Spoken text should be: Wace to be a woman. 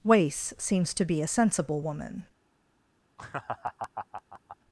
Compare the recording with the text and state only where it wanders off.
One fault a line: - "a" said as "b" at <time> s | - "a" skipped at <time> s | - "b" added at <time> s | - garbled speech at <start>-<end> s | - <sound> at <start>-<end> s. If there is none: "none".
- "seems" added at 0.6 s
- "sensible" added at 1.2 s
- laugh at 3.2-4.6 s